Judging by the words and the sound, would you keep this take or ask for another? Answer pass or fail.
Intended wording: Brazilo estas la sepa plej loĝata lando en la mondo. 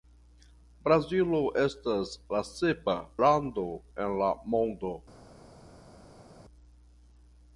fail